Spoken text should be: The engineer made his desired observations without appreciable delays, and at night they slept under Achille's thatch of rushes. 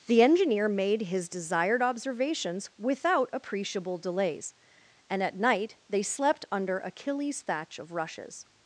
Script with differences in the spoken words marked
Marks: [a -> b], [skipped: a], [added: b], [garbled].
The engineer made his desired observations without appreciable delays, and at night they slept under Achille's thatch of rushes.